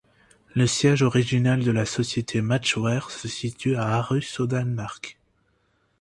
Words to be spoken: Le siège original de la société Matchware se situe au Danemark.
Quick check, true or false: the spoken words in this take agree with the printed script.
false